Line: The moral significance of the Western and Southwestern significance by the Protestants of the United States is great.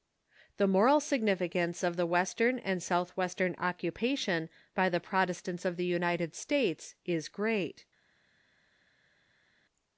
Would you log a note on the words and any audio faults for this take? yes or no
yes